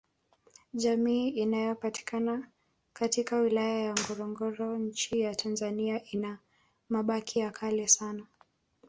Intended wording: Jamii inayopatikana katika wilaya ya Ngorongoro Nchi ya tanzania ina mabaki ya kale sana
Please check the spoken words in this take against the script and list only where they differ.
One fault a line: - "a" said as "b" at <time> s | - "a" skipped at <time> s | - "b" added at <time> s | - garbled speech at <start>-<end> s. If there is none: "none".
none